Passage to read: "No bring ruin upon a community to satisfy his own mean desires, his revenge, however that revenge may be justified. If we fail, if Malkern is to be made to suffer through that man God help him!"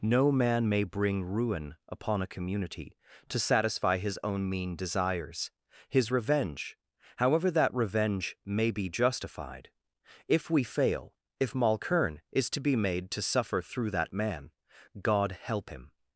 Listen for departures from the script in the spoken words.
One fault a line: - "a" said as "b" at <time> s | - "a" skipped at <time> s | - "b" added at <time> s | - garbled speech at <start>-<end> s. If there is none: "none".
- "man may" added at 0.3 s